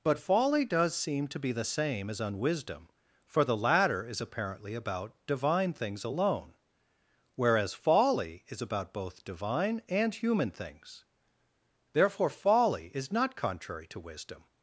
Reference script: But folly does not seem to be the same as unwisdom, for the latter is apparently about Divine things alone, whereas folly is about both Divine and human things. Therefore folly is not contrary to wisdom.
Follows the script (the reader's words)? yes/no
no